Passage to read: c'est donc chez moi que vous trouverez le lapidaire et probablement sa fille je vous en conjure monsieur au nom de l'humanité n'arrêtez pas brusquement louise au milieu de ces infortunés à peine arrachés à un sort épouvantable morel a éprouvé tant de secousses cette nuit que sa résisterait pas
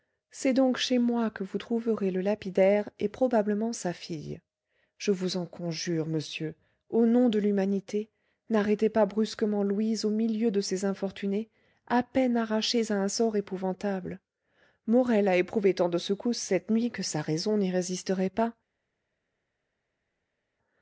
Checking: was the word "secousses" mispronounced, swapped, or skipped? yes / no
no